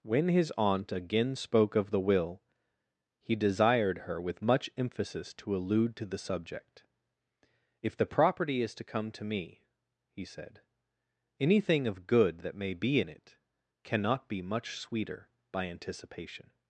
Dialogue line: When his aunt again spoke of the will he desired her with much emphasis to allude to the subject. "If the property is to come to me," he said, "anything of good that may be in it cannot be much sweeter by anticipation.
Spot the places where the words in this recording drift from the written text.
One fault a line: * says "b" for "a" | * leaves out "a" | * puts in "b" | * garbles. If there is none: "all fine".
all fine